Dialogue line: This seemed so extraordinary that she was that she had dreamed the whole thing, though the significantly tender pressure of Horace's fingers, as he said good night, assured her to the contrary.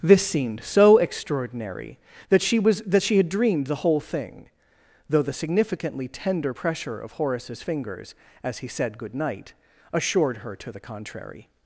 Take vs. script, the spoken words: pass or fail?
pass